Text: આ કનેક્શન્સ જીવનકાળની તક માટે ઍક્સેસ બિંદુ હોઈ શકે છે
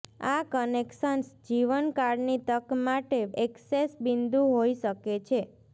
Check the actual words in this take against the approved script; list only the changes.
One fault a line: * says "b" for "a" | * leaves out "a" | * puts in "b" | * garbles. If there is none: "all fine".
all fine